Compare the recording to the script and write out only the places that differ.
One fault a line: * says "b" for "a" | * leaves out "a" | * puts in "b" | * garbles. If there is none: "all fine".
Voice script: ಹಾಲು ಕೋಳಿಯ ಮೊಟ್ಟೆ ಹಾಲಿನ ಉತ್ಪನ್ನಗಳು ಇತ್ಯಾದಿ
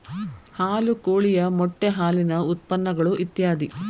all fine